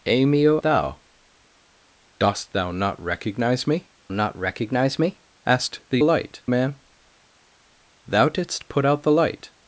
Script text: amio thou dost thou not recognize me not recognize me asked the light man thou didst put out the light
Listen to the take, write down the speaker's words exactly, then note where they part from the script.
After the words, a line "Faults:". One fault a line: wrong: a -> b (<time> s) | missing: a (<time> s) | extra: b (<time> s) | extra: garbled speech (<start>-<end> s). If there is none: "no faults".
amio thou dost thou not recognize me not recognize me asked the light man thou didst put out the light
Faults:
no faults